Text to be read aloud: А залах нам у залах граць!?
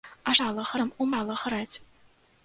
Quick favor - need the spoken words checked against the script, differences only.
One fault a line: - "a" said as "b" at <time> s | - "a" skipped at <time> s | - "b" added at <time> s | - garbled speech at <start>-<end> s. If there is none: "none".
none